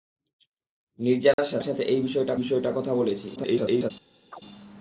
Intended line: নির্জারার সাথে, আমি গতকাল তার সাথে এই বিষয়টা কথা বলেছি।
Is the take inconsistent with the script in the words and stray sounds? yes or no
yes